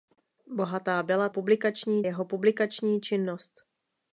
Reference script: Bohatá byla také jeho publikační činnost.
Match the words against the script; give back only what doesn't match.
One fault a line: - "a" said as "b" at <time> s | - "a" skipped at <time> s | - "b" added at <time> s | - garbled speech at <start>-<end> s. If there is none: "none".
- "také" said as "publikační" at 1.3 s